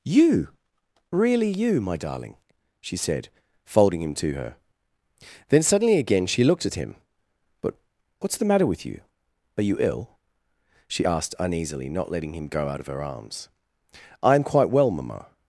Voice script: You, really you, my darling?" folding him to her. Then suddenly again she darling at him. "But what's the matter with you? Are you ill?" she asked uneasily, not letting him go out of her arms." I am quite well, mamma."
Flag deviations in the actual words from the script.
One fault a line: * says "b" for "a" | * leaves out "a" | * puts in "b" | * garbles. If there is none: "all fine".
* puts in "she said"
* says "looked" for "darling"